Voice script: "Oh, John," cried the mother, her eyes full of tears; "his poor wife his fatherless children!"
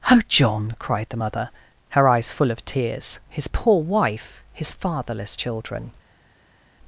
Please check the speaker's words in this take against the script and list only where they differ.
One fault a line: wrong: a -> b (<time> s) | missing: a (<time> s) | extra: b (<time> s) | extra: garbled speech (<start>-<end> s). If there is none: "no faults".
no faults